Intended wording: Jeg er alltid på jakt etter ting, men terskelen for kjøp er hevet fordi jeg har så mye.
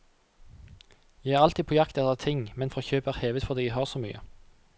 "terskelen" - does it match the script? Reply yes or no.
no